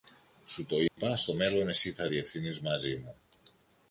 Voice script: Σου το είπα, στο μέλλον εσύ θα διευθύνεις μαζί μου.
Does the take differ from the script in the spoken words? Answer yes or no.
no